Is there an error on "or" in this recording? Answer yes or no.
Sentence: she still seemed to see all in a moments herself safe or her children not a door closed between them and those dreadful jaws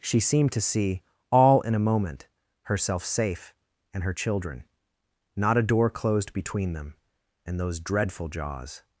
yes